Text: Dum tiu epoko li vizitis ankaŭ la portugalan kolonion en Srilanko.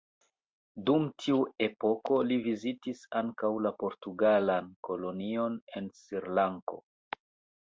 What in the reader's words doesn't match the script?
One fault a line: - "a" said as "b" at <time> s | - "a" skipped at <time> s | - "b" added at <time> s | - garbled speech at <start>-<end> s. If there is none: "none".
none